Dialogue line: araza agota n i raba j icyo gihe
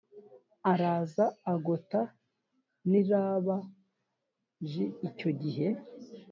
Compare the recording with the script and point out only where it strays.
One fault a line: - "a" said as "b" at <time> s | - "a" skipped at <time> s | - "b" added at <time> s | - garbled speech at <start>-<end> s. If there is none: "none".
none